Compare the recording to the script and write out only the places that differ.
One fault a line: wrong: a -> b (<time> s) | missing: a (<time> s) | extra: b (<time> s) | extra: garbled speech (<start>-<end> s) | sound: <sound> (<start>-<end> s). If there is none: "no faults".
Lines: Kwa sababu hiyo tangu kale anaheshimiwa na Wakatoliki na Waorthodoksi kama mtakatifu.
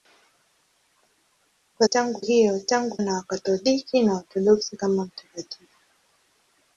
wrong: sababu -> tangu (1.8 s)
missing: kale anaheshimiwa (3.0 s)